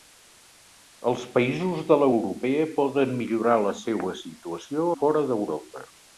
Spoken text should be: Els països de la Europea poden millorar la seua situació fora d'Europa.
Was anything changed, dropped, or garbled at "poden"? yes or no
no